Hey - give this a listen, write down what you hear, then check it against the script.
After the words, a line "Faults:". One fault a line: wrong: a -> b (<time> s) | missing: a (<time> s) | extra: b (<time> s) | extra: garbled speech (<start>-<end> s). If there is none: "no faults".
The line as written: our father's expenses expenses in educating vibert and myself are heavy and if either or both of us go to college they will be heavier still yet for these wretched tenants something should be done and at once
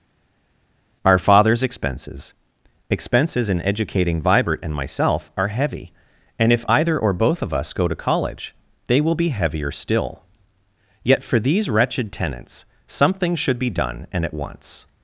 our father's expenses expenses in educating vibert and myself are heavy and if either or both of us go to college they will be heavier still yet for these wretched tenants something should be done and at once
Faults:
no faults